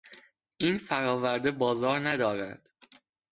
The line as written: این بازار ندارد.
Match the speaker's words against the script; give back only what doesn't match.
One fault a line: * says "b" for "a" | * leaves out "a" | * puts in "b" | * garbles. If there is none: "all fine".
* puts in "فراورده"